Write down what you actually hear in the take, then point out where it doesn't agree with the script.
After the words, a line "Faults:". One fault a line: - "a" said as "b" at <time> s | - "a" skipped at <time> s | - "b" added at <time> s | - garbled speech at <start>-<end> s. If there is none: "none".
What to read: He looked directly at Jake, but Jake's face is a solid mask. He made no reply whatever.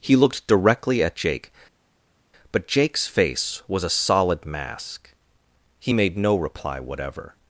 He looked directly at Jake, but Jake's face was a solid mask. He made no reply whatever.
Faults:
- "is" said as "was" at 3.7 s